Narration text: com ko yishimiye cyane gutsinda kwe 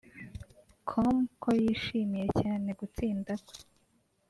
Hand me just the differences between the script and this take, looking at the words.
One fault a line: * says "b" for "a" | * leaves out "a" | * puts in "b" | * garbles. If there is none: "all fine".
all fine